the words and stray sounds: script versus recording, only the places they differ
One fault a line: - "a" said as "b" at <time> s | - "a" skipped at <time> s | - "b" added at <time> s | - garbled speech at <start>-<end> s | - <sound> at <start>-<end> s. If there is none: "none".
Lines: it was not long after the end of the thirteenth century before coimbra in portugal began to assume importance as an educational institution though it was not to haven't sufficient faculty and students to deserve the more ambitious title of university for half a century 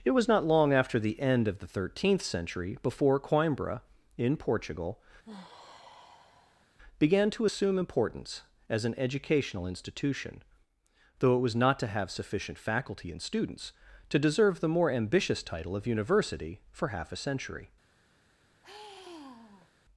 - sigh at 5.2-6.8 s
- "haven't" said as "have" at 11.9 s
- sigh at 18.6-19.7 s